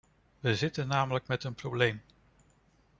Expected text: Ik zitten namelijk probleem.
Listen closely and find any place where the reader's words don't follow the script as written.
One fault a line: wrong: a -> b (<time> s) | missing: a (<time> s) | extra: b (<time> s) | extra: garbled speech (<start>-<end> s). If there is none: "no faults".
wrong: Ik -> We (0.4 s)
extra: met een (1.3 s)